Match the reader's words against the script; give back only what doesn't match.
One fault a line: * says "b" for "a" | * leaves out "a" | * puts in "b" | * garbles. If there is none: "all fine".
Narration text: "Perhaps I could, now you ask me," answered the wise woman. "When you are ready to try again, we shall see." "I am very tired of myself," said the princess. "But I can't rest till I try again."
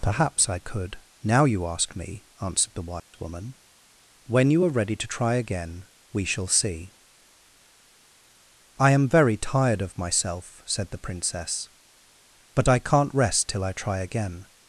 all fine